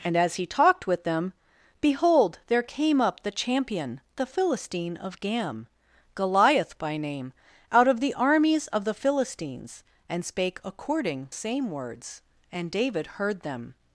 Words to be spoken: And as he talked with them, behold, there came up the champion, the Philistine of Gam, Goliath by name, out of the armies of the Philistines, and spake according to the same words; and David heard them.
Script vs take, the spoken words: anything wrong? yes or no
yes